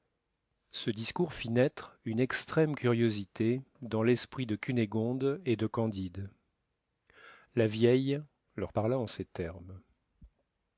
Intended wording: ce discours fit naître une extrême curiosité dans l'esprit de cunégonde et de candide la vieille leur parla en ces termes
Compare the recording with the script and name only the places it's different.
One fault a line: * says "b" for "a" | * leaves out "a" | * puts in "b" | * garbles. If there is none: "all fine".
all fine